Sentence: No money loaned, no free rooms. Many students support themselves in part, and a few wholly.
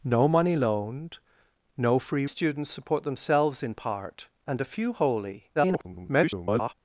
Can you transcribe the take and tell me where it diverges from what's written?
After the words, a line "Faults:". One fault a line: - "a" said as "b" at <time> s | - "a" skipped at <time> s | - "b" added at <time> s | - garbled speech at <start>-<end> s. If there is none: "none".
No money loaned, no free students support themselves in part, and a few wholly. [garbled]
Faults:
- "rooms Many" skipped at 2.2 s
- garbled speech at 5.5-6.7 s